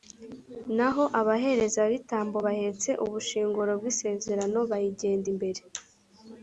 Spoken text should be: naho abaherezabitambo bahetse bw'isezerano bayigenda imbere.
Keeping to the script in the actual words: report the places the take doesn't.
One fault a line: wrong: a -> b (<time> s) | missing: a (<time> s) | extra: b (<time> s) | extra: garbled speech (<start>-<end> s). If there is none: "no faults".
extra: ubushyinguro (3.0 s)